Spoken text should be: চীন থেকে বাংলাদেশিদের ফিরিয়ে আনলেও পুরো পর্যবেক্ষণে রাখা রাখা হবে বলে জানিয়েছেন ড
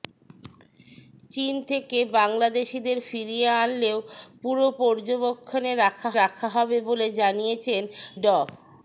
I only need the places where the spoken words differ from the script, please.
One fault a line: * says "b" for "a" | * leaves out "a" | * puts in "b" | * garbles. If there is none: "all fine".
all fine